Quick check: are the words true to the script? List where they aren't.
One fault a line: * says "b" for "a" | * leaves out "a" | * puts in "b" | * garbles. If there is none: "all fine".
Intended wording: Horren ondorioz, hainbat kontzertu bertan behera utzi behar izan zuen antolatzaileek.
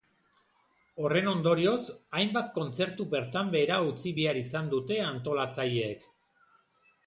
* says "dute" for "zuen"